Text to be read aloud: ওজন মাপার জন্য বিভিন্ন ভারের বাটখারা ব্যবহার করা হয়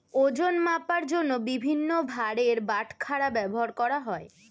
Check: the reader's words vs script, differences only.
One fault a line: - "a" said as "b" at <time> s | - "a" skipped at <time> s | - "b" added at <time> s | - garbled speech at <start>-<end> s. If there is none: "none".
none